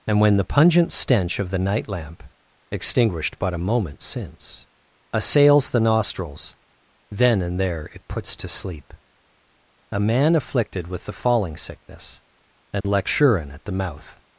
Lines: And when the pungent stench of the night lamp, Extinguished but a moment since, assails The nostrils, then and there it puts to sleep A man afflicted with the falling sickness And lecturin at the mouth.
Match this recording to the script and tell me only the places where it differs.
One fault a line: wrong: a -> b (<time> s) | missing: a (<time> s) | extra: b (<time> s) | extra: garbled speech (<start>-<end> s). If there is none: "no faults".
no faults